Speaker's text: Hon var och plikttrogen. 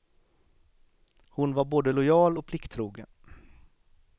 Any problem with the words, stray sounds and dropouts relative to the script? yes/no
yes